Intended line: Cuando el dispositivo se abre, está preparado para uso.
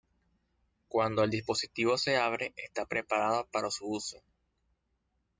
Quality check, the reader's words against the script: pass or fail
fail